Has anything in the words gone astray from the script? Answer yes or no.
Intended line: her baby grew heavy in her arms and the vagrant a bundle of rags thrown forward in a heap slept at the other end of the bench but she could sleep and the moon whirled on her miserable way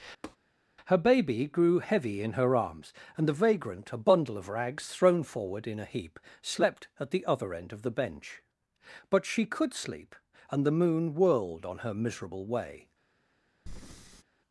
no